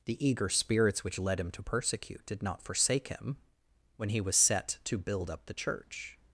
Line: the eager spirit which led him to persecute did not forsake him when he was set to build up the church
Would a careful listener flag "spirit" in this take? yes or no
yes